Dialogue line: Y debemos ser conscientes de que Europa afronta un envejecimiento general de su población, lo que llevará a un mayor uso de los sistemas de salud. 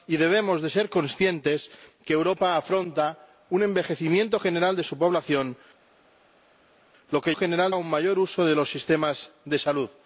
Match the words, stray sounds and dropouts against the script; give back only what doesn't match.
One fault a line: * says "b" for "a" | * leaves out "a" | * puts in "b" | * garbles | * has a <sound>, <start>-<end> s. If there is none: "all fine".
* says "general" for "llevará"